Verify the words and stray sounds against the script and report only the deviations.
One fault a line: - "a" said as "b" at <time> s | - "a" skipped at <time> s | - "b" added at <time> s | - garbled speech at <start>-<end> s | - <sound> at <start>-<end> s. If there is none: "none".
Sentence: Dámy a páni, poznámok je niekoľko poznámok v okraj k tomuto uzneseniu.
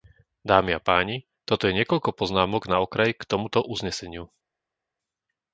- "poznámok" said as "toto" at 1.4 s
- "v" said as "na" at 2.6 s